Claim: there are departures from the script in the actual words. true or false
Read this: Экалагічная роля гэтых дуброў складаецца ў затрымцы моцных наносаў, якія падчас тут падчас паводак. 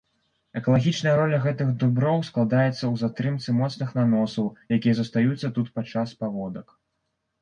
true